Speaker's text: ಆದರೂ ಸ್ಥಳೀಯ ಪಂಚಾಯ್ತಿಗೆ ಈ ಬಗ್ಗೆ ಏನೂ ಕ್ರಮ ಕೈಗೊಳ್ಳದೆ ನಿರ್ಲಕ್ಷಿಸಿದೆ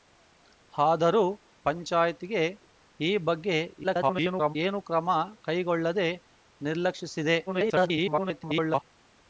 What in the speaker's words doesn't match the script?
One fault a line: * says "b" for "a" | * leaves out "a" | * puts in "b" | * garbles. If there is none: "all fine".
* leaves out "ಸ್ಥಳೀಯ"
* garbles
* garbles